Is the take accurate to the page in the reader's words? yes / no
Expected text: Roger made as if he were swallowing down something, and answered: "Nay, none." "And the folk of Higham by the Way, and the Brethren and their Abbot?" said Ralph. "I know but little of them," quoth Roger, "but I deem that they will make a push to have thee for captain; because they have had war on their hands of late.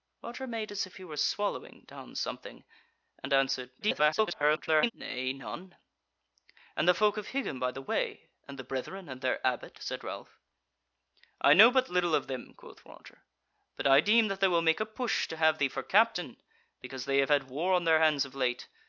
no